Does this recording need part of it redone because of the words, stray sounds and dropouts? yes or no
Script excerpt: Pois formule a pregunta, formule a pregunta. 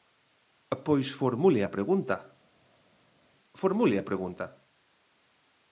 no